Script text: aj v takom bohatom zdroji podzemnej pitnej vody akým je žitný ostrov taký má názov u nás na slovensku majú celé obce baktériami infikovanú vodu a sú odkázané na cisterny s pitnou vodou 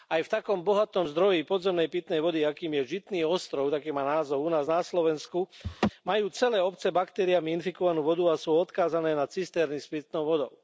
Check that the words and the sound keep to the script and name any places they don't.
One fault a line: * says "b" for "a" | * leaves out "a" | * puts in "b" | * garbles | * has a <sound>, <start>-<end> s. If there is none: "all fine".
* has a laugh, 5.6-5.9 s